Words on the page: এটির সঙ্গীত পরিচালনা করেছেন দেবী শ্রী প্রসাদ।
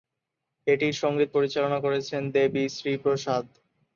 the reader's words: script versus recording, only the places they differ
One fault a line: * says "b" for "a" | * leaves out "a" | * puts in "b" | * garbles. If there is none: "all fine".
all fine